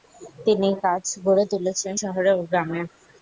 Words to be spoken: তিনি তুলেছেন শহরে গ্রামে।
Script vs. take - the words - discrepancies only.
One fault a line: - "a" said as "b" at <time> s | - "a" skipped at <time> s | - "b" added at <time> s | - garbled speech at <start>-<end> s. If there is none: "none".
- "কাজ গড়ে" added at 0.8 s
- "ও" added at 2.3 s